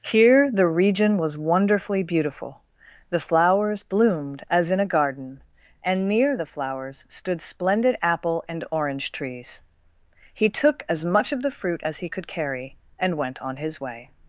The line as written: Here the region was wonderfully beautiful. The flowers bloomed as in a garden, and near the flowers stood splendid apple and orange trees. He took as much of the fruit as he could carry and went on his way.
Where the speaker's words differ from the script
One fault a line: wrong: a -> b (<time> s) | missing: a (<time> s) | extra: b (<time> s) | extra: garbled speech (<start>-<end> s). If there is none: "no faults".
no faults